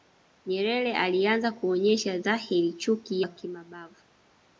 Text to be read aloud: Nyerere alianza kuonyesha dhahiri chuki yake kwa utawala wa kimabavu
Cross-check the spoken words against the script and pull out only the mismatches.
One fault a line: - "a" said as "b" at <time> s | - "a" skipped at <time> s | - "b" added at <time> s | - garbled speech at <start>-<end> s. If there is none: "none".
- "yake kwa utawala" skipped at 3.2 s